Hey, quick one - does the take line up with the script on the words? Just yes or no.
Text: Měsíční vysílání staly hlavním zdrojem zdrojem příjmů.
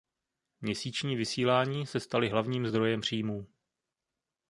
no